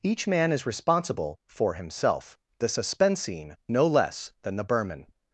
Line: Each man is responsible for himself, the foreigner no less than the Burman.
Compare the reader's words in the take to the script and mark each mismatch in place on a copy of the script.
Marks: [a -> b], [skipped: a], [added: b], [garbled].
Each man is responsible for himself, the [foreigner -> suspensine] no less than the Burman.